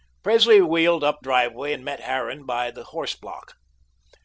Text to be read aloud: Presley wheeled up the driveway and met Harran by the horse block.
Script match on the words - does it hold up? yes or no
no